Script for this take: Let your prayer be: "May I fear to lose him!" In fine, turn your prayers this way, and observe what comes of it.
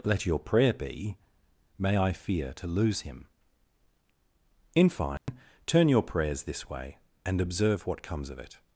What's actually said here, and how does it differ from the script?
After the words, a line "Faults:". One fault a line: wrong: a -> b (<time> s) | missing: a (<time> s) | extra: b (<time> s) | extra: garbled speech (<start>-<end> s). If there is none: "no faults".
Let your prayer be: "May I fear to lose him!" In fine, turn your prayers this way, and observe what comes of it.
Faults:
no faults